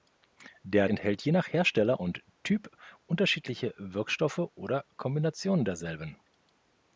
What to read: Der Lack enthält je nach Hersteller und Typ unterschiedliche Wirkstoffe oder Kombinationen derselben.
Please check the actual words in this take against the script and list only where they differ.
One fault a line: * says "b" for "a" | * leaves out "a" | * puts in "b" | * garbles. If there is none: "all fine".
* leaves out "Lack"